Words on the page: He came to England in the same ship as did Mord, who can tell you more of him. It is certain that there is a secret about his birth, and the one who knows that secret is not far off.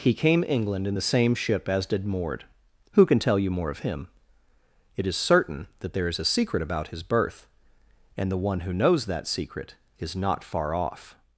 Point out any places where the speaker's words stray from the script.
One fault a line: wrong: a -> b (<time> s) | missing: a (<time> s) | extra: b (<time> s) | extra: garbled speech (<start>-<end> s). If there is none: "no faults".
missing: to (0.4 s)